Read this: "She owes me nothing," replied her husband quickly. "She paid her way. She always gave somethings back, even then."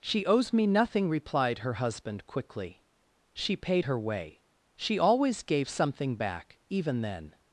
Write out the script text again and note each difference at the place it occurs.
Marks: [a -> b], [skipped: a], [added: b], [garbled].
"She owes me nothing," replied her husband quickly. "She paid her way. She always gave [somethings -> something] back, even then."